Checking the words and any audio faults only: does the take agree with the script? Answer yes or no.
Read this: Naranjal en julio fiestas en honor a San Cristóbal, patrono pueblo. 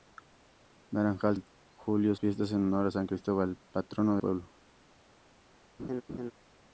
no